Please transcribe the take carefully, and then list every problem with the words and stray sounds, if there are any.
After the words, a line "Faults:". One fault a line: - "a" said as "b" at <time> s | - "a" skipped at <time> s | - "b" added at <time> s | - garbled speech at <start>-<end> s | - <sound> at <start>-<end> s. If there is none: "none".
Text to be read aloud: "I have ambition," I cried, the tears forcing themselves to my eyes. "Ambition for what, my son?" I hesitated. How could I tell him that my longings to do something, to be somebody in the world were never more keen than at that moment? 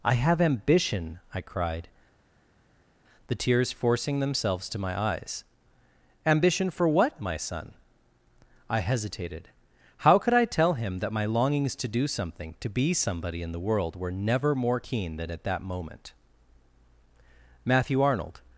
"I have ambition," I cried, the tears forcing themselves to my eyes. "Ambition for what, my son?" I hesitated. How could I tell him that my longings to do something, to be somebody in the world were never more keen than at that moment? Matthew Arnold
Faults:
- "Matthew Arnold" added at 17.7 s